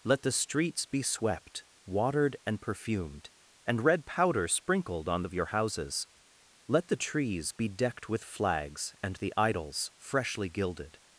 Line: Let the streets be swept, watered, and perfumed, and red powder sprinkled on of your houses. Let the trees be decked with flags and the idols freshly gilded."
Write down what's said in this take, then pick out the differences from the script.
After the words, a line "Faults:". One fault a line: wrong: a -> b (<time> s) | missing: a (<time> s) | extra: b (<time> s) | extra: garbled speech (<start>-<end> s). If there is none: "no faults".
Let the streets be swept, watered, and perfumed, and red powder sprinkled on of your houses. Let the trees be decked with flags and the idols freshly gilded."
Faults:
no faults